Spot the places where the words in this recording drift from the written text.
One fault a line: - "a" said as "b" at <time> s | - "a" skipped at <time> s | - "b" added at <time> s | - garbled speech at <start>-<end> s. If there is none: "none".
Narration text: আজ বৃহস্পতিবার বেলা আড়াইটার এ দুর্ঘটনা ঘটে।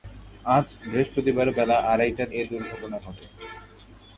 none